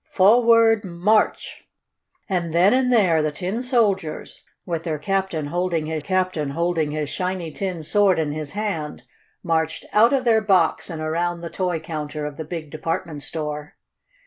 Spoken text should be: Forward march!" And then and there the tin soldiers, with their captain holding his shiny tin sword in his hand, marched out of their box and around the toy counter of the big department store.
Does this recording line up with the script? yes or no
no